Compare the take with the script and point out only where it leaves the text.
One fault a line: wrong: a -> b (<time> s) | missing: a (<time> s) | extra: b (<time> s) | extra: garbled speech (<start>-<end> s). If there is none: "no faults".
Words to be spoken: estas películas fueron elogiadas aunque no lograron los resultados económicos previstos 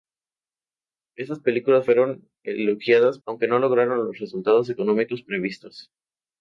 no faults